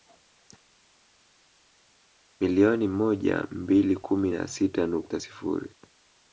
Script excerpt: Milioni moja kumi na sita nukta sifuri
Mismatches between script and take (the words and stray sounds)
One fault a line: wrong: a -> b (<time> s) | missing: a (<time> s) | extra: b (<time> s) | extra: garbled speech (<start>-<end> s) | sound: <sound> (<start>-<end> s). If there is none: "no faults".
extra: mbili (3.5 s)